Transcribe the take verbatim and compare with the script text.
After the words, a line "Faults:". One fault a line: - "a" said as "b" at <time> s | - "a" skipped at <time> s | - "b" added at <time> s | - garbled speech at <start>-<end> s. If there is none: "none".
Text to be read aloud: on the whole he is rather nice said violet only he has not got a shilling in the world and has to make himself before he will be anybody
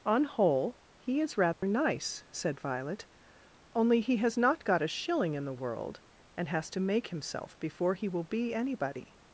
on whole he is rather nice said violet only he has not got a shilling in the world and has to make himself before he will be anybody
Faults:
- "the" skipped at 0.2 s